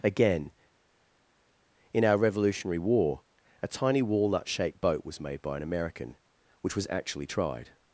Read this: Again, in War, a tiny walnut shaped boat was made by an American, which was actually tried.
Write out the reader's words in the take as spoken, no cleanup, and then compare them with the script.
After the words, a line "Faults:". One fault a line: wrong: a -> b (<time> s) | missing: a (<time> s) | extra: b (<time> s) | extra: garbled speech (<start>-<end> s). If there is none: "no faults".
Again, in our Revolutionary War, a tiny walnut shaped boat was made by an American, which was actually tried.
Faults:
extra: our Revolutionary (2.0 s)